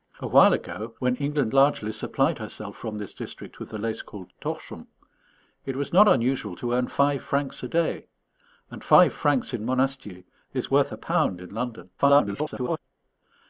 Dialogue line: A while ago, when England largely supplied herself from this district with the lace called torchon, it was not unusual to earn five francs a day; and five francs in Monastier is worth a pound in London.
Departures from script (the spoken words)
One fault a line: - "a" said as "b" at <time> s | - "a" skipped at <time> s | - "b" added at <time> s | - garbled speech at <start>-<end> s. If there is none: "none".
- garbled speech at 12.0-12.8 s